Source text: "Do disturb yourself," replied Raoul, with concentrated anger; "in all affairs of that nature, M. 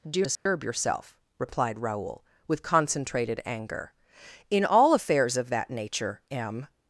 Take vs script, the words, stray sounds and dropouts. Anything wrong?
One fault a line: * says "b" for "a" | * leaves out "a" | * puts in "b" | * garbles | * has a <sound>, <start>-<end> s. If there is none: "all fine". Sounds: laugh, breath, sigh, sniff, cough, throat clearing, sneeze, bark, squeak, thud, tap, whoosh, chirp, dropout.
* has a dropout, 0.4-0.5 s